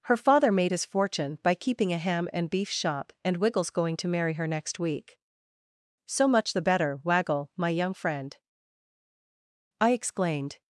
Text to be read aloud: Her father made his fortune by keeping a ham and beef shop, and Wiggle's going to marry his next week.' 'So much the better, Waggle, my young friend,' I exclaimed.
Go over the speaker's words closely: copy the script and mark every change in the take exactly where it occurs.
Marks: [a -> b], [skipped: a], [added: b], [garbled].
Her father made his fortune by keeping a ham and beef shop, and Wiggle's going to marry [his -> her] next week.' 'So much the better, Waggle, my young friend,' I exclaimed.